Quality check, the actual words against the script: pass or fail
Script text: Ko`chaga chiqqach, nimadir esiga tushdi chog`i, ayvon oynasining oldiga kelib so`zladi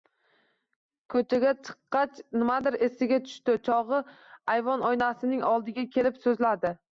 pass